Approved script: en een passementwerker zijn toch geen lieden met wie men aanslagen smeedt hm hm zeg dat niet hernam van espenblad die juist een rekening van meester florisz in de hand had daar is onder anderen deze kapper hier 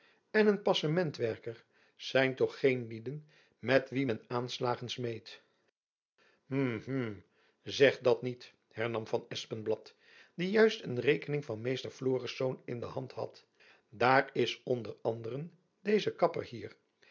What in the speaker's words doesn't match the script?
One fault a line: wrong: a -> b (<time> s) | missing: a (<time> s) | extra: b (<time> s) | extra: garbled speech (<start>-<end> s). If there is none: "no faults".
no faults